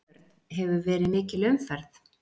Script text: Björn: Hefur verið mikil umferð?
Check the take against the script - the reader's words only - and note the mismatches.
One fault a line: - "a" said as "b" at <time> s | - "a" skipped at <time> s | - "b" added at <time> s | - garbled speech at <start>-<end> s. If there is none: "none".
none